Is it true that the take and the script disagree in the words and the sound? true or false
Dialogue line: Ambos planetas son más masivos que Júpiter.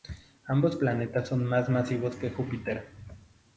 false